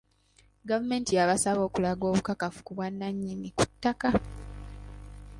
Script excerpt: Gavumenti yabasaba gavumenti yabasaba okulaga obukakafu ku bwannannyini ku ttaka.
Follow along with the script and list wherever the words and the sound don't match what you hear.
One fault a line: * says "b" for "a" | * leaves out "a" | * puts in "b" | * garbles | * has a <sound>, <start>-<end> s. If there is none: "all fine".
* leaves out "gavumenti yabasaba"